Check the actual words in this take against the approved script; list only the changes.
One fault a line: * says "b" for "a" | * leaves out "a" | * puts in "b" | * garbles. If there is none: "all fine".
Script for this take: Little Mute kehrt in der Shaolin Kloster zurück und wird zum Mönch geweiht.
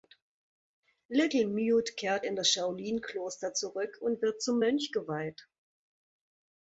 * says "das" for "der"